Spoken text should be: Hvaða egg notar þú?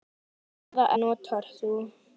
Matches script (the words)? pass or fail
fail